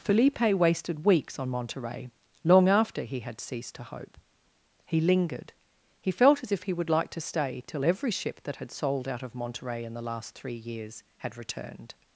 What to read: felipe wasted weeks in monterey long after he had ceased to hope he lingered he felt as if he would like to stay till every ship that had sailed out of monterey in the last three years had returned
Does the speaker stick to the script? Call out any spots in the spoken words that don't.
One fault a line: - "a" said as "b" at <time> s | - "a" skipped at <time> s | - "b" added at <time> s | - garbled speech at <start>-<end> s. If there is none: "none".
- "in" said as "on" at 1.4 s
- "sailed" said as "sold" at 8.7 s